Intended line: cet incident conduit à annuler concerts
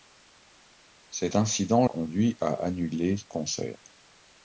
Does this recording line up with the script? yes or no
yes